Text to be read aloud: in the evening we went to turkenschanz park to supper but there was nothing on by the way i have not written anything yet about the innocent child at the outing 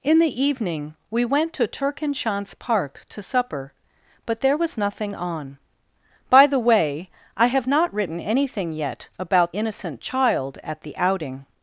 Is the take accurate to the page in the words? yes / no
no